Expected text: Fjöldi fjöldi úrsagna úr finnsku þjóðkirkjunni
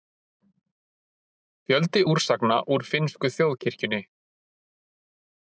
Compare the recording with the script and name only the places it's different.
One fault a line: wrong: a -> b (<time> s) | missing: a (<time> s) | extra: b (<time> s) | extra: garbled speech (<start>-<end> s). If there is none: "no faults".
missing: fjöldi (2.0 s)